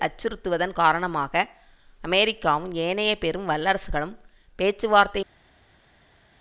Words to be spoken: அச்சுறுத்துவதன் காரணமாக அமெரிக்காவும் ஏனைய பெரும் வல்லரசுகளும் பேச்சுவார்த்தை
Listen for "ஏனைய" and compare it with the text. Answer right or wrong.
right